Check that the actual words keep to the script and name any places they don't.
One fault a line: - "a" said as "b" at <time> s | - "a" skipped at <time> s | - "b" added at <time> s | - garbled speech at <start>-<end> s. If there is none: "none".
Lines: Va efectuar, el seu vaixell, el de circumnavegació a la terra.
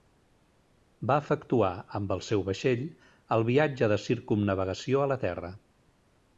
- "amb" added at 2.0 s
- "viatge" added at 3.5 s